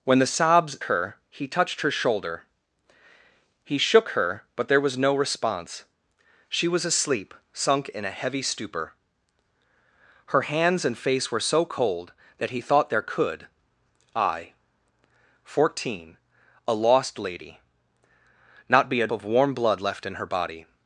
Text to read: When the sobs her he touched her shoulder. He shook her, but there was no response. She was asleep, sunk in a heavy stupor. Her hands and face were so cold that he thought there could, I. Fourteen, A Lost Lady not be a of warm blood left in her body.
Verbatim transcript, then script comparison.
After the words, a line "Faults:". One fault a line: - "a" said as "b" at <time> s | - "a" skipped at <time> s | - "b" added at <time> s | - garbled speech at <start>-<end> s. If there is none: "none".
When the sobs her he touched her shoulder. He shook her, but there was no response. She was asleep, sunk in a heavy stupor. Her hands and face were so cold that he thought there could, I. Fourteen, A Lost Lady not be a of warm blood left in her body.
Faults:
none